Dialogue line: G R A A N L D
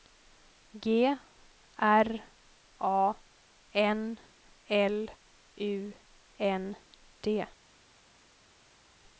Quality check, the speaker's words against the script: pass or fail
fail